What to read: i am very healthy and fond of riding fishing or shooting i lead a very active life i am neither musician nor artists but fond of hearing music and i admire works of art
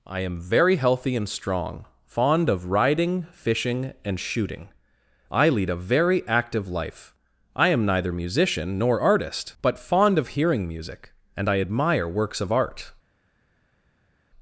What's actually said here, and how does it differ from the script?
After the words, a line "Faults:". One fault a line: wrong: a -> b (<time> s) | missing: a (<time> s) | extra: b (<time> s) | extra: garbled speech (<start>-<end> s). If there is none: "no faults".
i am very healthy and strong fond of riding fishing and shooting i lead a very active life i am neither musician nor artist but fond of hearing music and i admire works of art
Faults:
extra: strong (1.3 s)
wrong: or -> and (4.0 s)
wrong: artists -> artist (9.0 s)